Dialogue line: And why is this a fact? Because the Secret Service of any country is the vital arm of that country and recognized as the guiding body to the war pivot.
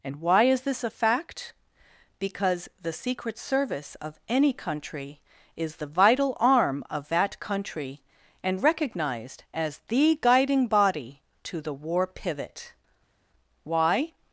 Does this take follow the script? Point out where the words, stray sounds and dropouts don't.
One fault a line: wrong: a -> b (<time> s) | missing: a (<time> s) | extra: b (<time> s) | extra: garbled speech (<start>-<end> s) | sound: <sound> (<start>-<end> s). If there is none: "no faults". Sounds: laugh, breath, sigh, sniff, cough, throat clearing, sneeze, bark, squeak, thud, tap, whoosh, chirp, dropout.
extra: Why (13.6 s)